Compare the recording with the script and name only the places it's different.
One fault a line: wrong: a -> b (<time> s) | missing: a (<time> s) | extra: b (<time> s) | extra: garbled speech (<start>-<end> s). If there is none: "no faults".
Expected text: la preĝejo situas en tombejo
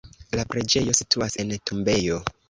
no faults